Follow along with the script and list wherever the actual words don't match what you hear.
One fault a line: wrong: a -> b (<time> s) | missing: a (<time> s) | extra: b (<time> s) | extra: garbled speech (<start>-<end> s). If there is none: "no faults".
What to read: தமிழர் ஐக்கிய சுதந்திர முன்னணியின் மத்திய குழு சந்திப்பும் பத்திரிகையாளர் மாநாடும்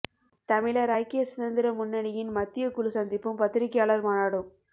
no faults